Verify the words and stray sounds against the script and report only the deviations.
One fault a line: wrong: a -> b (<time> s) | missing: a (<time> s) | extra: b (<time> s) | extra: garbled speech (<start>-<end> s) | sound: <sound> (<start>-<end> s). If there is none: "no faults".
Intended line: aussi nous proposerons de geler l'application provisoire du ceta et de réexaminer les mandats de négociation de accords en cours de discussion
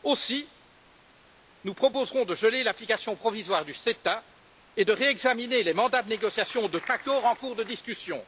no faults